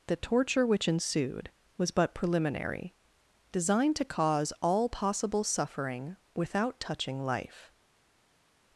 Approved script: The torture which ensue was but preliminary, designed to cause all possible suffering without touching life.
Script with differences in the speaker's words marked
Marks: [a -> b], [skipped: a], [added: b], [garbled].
The torture which [ensue -> ensued] was but preliminary, designed to cause all possible suffering without touching life.